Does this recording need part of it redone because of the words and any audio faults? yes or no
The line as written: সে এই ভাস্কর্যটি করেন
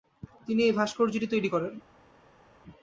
yes